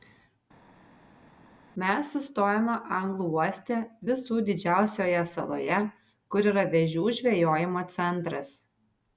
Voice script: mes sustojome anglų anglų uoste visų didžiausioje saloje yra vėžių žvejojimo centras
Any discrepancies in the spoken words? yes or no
yes